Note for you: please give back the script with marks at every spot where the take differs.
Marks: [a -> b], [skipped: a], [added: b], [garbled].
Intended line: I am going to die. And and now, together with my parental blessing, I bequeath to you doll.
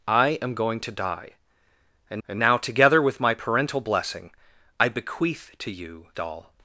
I am going to die. And and now, together with my parental blessing, I bequeath to you doll.